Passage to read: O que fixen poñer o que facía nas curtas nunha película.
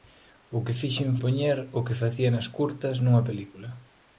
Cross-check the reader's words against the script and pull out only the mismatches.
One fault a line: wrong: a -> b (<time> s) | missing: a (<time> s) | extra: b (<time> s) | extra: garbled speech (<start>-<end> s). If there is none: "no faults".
no faults